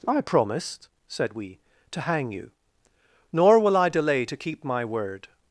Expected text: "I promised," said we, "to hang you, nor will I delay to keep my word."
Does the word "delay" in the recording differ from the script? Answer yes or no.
no